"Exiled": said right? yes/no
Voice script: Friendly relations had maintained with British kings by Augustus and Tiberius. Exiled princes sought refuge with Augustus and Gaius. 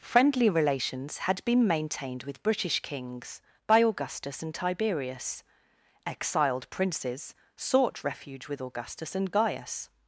yes